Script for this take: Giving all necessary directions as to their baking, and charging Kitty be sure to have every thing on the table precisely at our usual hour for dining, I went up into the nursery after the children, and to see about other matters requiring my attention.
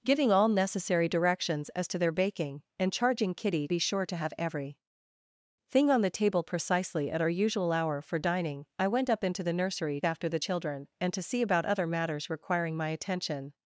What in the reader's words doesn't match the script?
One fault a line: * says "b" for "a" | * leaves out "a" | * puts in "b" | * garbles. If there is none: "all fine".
all fine